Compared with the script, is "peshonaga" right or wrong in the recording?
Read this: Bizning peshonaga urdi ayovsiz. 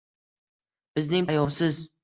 wrong